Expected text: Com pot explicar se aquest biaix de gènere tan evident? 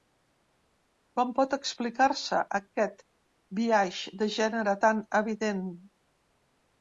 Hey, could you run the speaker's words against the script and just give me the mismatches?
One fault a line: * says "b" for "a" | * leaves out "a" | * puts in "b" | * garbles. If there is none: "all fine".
all fine